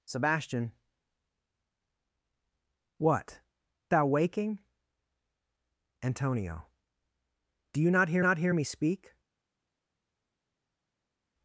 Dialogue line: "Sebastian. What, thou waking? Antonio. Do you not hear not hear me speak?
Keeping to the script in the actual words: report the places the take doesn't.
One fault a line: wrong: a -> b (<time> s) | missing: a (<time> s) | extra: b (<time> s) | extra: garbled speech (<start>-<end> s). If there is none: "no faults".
no faults